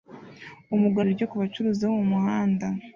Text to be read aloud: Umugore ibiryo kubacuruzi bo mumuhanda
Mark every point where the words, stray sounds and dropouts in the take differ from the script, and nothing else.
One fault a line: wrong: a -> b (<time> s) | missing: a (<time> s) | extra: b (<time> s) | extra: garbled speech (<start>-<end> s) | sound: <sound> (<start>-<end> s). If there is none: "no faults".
no faults